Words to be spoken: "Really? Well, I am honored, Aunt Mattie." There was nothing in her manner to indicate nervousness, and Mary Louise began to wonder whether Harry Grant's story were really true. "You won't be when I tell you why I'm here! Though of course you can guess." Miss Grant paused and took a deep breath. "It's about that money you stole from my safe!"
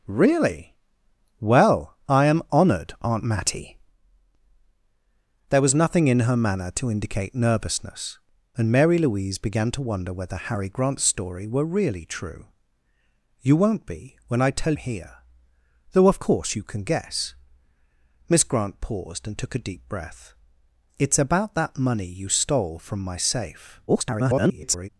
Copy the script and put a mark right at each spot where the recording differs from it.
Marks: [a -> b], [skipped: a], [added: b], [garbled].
"Really? Well, I am honored, Aunt Mattie." There was nothing in her manner to indicate nervousness, and Mary Louise began to wonder whether Harry Grant's story were really true. "You won't be when I tell [skipped: you why I'm] here! Though of course you can guess." Miss Grant paused and took a deep breath. "It's about that money you stole from my safe!" [garbled]